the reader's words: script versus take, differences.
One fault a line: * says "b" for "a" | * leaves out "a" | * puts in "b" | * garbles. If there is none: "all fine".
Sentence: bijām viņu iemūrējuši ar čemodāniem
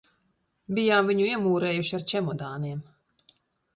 all fine